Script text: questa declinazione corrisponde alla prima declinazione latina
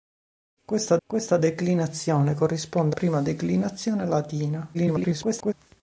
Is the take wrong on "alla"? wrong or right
wrong